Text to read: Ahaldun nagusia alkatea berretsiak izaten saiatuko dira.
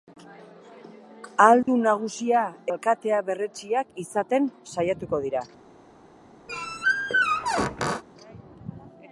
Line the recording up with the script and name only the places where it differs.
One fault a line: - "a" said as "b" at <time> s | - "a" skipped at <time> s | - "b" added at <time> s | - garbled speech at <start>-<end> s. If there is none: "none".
none